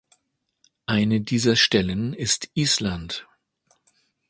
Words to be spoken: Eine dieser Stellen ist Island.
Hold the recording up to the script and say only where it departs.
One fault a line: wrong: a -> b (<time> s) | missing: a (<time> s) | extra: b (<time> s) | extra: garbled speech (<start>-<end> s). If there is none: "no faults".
no faults